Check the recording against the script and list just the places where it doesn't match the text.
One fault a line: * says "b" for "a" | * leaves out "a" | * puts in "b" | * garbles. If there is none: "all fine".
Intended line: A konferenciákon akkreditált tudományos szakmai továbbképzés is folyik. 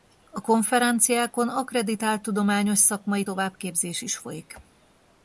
all fine